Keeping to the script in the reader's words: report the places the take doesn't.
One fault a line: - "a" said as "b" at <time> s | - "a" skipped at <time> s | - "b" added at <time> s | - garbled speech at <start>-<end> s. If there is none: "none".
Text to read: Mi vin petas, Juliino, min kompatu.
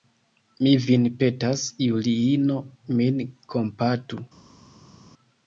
none